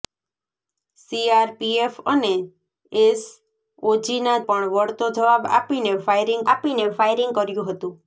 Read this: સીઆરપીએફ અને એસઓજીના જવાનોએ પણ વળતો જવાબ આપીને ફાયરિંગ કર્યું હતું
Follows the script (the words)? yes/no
no